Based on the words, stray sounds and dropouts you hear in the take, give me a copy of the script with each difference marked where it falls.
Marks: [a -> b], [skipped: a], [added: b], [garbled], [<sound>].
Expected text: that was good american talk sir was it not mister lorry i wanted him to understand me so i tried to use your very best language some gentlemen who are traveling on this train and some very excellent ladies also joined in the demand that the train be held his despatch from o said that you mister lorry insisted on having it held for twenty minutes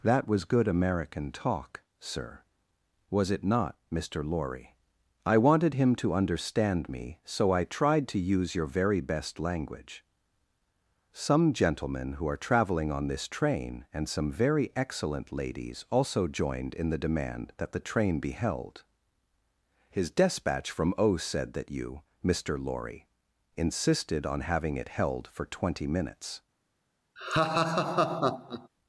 that was good american talk sir was it not mister lorry i wanted him to understand me so i tried to use your very best language some gentlemen who are traveling on this train and some very excellent ladies also joined in the demand that the train be held his despatch from o said that you mister lorry insisted on having it held for twenty minutes [laugh]